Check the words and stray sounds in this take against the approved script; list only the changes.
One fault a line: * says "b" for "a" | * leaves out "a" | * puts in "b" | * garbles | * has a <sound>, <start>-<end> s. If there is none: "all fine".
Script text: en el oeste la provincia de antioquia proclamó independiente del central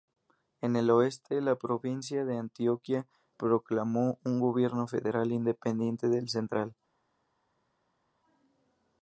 * puts in "un gobierno federal"